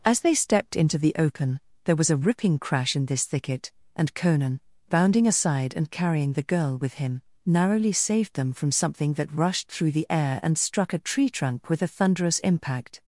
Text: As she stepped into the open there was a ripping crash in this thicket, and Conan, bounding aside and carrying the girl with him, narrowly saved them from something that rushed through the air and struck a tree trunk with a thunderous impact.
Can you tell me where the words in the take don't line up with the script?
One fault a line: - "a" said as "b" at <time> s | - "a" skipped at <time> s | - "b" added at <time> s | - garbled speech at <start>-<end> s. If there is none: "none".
- "she" said as "they" at 0.2 s